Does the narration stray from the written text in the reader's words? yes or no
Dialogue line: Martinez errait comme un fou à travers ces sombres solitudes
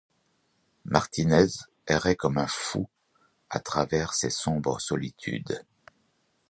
no